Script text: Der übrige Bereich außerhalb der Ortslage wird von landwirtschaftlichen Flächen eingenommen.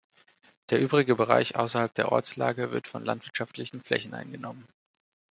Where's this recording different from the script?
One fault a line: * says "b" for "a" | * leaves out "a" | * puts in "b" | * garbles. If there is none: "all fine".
all fine